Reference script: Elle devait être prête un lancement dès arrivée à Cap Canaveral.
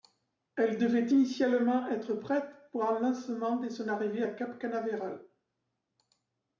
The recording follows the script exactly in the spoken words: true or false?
false